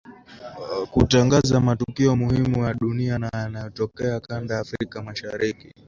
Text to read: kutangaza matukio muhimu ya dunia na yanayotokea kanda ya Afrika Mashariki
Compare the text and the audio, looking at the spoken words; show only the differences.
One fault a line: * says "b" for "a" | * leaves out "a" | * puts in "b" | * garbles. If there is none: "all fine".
all fine